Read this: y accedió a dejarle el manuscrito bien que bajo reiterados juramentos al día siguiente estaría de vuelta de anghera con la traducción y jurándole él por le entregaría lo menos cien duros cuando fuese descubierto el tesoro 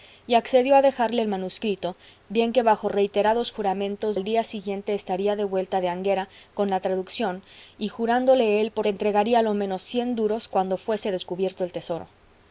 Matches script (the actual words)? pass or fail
pass